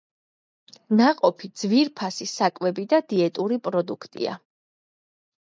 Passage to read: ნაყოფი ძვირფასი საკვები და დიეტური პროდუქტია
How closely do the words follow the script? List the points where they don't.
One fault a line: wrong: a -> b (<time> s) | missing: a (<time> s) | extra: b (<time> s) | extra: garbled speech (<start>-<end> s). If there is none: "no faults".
no faults